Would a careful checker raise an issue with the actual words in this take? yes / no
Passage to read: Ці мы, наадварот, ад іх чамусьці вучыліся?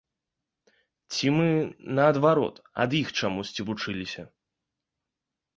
no